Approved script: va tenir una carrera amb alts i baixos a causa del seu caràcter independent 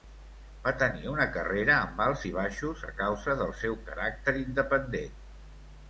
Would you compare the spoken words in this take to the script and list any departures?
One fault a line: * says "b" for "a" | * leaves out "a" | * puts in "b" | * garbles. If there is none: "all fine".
all fine